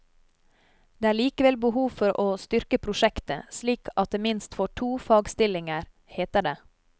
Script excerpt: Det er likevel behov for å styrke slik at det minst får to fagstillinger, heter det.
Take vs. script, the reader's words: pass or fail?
fail